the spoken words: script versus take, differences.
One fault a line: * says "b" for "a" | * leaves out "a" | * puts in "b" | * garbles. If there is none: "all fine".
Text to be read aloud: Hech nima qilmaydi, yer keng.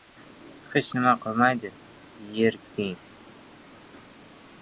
all fine